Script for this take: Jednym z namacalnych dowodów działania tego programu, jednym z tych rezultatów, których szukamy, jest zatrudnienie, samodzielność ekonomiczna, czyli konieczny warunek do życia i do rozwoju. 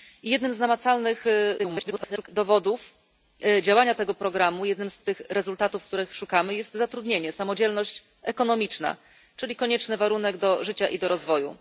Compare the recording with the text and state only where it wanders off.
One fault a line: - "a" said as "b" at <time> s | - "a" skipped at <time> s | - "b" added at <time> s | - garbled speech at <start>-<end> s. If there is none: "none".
- garbled speech at 1.6-2.3 s